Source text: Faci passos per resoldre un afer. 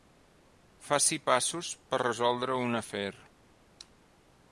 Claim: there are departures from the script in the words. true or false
false